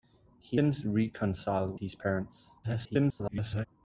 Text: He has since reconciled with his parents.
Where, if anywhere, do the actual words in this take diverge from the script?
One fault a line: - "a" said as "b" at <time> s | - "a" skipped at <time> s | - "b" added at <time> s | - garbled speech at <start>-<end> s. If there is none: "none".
- "has" skipped at 0.6 s
- "with" skipped at 1.8 s
- garbled speech at 2.6-3.7 s